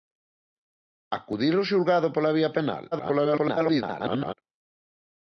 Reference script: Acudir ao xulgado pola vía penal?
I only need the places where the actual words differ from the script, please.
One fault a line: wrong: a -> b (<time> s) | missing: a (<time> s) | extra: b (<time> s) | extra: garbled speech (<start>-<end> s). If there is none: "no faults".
extra: garbled speech (2.9-4.3 s)